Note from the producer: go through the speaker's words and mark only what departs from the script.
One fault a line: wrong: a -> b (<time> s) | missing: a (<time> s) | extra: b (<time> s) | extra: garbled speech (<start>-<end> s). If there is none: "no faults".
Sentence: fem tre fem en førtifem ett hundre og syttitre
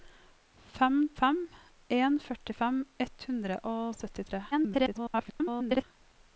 missing: tre (0.9 s)
extra: garbled speech (4.5-5.8 s)